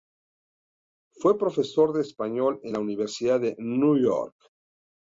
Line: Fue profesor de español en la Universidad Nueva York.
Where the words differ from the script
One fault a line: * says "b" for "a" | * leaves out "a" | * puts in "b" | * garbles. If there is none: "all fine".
* puts in "de"